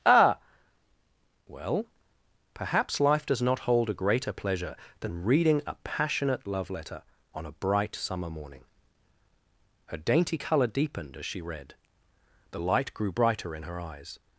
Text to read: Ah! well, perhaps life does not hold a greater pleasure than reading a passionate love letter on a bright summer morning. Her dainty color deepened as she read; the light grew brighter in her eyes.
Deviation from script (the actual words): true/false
false